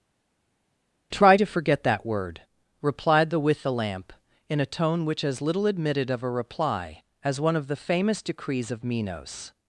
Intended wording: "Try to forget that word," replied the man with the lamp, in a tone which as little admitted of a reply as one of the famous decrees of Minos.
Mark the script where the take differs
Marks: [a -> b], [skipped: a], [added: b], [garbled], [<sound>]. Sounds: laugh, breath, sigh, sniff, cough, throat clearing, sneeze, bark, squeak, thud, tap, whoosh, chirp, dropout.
"Try to forget that word," replied the [skipped: man] with the lamp, in a tone which as little admitted of a reply as one of the famous decrees of Minos.